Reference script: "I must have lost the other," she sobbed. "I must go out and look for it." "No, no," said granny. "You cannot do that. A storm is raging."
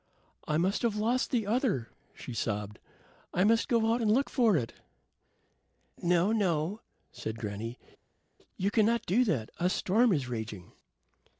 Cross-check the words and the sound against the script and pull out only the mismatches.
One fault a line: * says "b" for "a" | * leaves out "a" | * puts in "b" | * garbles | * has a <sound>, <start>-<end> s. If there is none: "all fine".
all fine